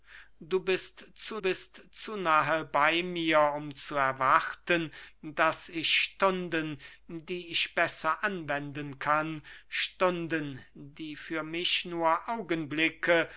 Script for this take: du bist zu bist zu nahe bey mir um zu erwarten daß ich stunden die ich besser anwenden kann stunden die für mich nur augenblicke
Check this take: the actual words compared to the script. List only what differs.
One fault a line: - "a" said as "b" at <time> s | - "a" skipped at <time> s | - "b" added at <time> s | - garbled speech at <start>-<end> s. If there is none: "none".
none